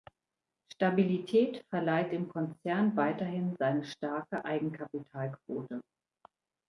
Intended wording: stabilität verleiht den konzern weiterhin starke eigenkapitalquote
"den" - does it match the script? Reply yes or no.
no